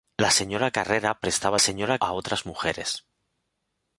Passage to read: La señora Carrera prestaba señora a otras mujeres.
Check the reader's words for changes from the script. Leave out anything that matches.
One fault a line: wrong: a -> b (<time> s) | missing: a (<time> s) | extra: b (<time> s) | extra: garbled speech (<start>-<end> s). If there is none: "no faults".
no faults